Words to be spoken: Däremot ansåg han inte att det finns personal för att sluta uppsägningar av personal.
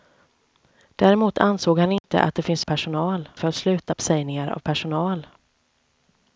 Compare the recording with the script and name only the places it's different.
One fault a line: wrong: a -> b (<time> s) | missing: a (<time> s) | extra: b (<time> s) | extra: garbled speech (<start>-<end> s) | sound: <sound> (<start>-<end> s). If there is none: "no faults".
sound: dropout (2.0-2.0 s)